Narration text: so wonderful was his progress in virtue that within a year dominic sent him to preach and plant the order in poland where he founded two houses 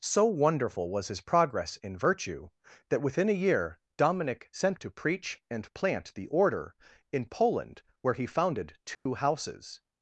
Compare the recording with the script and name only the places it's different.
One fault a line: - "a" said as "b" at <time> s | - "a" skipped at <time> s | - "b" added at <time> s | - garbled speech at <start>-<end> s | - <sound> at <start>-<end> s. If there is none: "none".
- "him" skipped at 4.8 s
- dropout at 8.9-9.1 s